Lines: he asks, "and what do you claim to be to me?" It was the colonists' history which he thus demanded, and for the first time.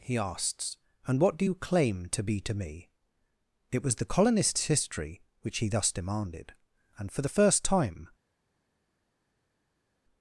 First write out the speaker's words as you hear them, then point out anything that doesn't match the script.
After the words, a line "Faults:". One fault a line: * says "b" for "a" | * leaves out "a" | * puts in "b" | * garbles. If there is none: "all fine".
he asks, "and what do you claim to be to me?" It was the colonists' history which he thus demanded, and for the first time.
Faults:
all fine